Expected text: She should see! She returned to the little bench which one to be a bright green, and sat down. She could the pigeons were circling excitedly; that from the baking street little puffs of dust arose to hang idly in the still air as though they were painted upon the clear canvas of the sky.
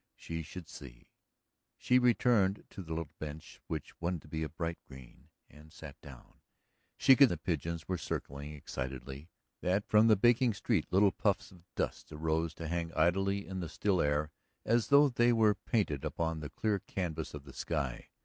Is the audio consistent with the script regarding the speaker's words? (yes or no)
yes